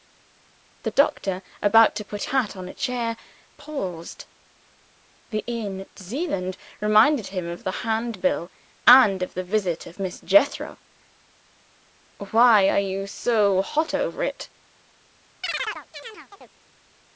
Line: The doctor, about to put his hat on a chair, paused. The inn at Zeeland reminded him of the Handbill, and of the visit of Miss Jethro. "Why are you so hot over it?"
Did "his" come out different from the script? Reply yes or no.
yes